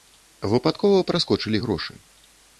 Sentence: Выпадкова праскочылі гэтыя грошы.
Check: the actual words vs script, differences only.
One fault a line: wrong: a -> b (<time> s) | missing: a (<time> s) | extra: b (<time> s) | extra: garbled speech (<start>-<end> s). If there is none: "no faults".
missing: гэтыя (1.6 s)